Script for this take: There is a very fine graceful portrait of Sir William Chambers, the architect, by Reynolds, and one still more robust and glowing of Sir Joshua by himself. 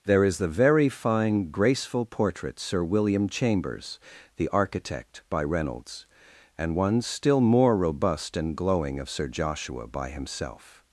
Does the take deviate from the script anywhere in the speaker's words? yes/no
yes